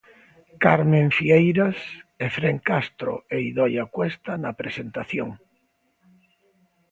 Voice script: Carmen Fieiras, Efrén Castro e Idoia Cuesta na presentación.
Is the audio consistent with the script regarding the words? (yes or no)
yes